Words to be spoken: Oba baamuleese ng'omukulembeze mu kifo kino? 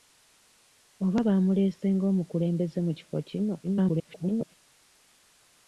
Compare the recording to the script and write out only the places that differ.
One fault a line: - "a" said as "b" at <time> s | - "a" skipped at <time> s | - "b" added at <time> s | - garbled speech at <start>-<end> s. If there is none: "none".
- garbled speech at 3.6-4.6 s